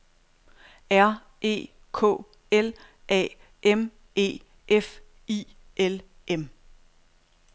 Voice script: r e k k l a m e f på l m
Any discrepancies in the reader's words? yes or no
yes